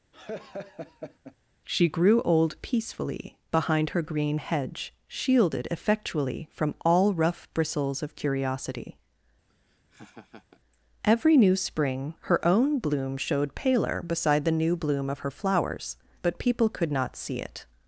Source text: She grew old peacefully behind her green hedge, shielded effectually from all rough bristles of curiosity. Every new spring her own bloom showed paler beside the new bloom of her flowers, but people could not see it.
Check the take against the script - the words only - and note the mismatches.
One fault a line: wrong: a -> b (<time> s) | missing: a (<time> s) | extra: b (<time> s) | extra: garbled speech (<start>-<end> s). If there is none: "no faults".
no faults